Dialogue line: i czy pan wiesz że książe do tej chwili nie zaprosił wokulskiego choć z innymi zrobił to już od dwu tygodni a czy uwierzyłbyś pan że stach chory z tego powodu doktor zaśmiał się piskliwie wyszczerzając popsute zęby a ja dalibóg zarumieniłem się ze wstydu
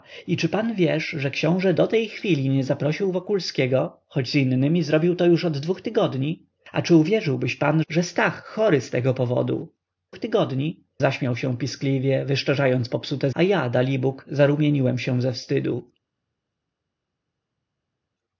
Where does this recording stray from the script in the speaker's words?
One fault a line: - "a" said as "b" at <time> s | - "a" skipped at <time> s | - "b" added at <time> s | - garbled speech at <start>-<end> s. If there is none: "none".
- "doktor" said as "tygodni" at 10.1 s
- "zęby" skipped at 13.3 s